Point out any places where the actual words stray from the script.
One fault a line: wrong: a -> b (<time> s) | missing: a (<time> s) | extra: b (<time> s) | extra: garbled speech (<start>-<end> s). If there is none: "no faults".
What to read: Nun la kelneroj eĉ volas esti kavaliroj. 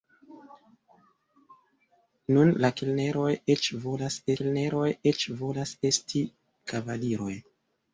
extra: kelneroj eĉ volas (4.4 s)